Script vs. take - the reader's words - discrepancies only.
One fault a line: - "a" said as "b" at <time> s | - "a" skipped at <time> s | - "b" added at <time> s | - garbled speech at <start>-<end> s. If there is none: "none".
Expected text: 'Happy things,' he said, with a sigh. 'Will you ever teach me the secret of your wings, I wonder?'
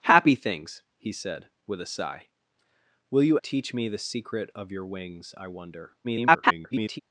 - "ever" skipped at 3.4 s
- garbled speech at 6.0-7.0 s